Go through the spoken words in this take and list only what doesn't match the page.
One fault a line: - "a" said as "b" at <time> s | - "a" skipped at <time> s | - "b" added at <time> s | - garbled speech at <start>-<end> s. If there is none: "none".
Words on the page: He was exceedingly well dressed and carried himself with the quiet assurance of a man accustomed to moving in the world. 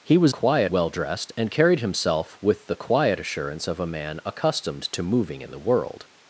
- "exceedingly" said as "quiet" at 0.3 s